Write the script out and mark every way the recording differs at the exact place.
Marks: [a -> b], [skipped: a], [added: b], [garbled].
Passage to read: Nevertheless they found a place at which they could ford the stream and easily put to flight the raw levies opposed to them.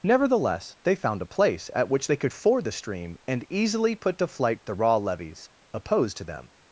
Nevertheless they found a place at which they could ford the stream and easily put to flight the raw levies opposed to them.